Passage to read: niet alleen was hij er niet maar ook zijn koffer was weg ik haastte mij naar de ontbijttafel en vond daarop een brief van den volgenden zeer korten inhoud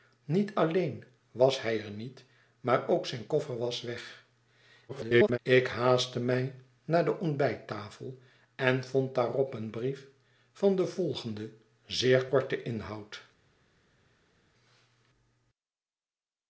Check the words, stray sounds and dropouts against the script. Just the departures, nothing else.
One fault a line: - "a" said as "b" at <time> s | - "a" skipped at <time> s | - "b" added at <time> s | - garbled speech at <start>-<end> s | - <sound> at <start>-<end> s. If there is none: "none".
- garbled speech at 4.9-5.4 s